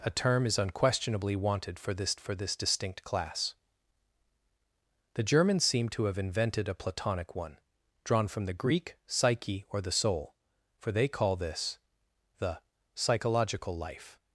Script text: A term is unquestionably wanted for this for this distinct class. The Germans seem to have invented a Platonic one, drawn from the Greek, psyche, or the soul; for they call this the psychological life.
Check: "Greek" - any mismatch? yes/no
no